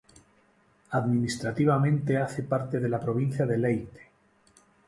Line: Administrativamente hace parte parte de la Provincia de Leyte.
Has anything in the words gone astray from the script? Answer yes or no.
yes